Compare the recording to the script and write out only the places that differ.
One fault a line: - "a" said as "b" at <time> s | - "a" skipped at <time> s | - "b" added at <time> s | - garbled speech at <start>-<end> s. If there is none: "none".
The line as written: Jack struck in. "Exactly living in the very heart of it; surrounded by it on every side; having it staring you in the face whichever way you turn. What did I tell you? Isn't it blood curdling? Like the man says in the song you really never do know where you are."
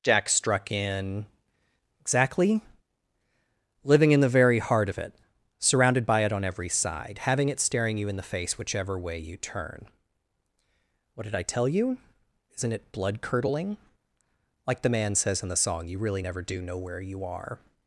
none